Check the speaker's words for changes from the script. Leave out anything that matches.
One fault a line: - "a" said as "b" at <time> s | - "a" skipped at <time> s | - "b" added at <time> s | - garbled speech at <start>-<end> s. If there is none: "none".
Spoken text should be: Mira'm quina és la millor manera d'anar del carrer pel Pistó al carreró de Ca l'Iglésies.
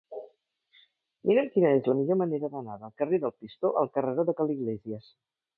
- "pel" said as "del" at 3.3 s